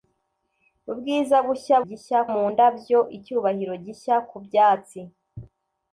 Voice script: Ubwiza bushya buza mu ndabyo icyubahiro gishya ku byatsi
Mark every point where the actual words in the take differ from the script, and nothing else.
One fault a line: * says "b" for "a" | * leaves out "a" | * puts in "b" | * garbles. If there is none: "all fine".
* says "gishya" for "buza"